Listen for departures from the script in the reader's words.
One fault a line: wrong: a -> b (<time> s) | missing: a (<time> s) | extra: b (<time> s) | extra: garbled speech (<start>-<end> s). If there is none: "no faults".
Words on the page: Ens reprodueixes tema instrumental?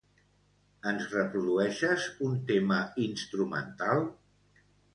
extra: un (2.3 s)